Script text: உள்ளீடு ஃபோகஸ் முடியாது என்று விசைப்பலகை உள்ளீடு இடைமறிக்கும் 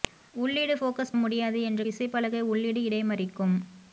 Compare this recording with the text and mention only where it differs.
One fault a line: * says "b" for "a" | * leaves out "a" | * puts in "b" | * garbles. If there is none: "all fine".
all fine